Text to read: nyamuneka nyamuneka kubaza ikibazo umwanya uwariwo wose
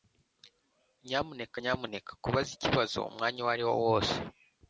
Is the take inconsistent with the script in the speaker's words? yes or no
no